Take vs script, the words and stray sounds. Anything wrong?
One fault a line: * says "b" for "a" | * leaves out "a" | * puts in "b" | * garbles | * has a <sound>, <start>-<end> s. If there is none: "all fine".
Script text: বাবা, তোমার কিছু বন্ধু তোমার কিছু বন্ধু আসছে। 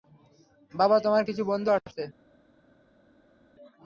* leaves out "তোমার কিছু বন্ধু"